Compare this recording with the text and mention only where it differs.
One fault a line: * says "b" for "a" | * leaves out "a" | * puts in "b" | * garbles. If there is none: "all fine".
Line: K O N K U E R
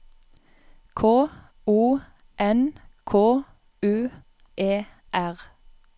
all fine